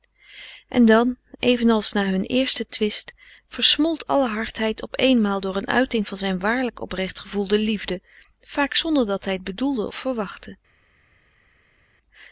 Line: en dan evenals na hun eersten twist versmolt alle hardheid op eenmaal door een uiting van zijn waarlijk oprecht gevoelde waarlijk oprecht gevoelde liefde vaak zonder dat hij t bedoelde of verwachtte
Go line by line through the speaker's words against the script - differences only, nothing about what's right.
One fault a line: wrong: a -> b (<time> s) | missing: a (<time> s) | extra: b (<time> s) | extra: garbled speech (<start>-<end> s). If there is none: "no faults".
missing: waarlijk oprecht gevoelde (7.6 s)